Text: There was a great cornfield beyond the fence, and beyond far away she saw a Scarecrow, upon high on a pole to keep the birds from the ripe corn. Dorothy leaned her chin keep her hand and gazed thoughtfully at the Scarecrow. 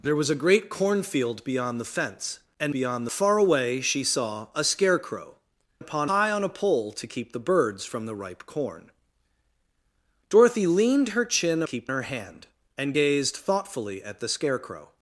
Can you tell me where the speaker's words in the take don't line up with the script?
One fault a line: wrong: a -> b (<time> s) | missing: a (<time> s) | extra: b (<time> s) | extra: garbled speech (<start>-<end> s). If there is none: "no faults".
no faults